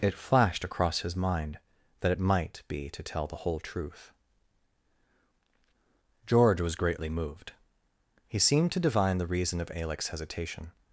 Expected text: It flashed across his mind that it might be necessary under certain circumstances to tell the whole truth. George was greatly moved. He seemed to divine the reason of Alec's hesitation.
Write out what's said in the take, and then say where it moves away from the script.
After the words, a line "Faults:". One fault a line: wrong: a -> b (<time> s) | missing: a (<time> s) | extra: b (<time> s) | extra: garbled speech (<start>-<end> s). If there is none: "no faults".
It flashed across his mind that it might be to tell the whole truth. George was greatly moved. He seemed to divine the reason of Alec's hesitation.
Faults:
missing: necessary under certain circumstances (2.9 s)